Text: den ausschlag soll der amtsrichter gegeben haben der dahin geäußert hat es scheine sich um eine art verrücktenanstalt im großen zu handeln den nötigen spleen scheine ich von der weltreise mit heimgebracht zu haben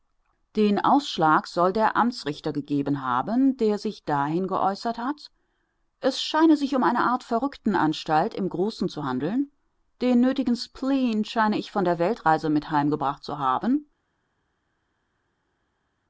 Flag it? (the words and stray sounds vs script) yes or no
yes